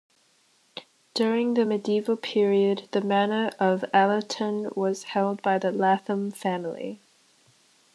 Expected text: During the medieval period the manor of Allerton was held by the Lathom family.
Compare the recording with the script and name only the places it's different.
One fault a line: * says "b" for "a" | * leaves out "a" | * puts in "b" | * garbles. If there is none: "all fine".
all fine